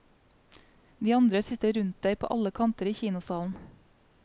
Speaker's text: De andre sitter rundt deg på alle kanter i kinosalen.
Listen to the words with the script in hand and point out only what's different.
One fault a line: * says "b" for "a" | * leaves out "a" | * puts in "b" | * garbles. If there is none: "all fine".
all fine